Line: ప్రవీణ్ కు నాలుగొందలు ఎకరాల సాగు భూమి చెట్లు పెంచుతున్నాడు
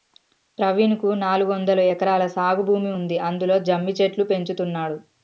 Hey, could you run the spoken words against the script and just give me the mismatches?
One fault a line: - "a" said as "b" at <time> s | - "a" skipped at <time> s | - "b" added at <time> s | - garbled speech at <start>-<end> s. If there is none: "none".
- "ఉంది అందులో జమ్మి" added at 3.0 s